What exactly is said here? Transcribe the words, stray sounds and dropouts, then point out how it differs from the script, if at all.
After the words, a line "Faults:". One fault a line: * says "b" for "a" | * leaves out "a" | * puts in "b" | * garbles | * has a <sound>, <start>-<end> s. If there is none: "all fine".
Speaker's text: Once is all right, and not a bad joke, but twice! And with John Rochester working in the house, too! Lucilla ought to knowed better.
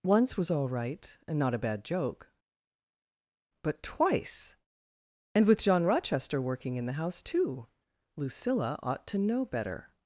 Once was all right, and not a bad joke, but twice! And with John Rochester working in the house, too! Lucilla ought to know better.
Faults:
* says "was" for "is"
* says "know" for "knowed"